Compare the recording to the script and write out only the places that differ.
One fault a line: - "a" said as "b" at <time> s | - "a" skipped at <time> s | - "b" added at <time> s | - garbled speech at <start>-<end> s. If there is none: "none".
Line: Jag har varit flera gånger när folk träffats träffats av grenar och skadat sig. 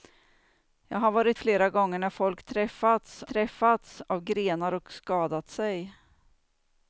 none